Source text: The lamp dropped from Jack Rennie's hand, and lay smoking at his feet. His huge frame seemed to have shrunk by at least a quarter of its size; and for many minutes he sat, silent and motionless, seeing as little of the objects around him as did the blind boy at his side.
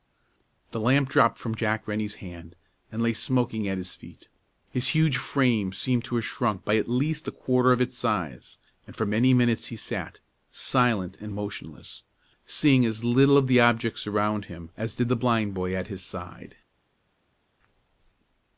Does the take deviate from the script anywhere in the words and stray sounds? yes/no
no